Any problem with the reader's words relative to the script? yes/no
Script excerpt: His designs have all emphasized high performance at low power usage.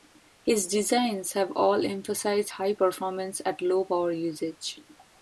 no